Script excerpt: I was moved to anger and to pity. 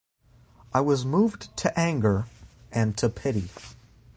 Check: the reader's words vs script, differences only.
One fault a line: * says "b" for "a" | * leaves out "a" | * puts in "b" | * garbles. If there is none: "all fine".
all fine